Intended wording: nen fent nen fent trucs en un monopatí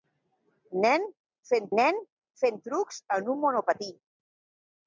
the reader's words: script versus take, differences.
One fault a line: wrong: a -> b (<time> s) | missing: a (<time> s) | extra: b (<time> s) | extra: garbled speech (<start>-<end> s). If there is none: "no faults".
no faults